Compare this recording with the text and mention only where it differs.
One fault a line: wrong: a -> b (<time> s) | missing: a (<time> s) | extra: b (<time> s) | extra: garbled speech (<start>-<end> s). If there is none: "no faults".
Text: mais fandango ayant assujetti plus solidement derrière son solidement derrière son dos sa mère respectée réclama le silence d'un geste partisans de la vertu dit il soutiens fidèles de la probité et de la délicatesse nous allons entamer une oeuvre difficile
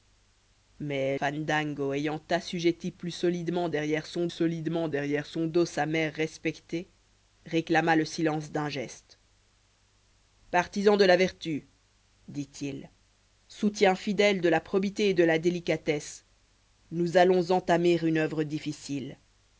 no faults